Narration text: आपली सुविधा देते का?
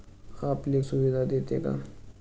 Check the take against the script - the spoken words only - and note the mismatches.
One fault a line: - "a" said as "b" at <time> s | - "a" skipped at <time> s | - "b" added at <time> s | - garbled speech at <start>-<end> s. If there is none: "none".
none